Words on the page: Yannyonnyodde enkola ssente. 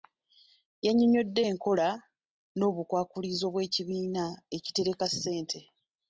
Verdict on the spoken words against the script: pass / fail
fail